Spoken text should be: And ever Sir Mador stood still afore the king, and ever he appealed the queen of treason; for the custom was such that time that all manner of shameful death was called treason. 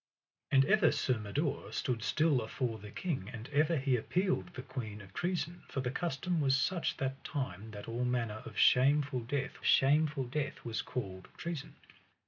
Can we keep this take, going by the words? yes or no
no